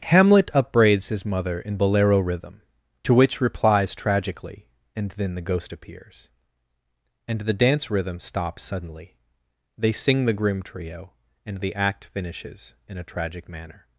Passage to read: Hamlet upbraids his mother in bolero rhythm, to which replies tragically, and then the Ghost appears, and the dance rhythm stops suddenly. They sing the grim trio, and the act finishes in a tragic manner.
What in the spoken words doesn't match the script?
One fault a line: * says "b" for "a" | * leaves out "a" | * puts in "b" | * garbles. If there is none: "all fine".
all fine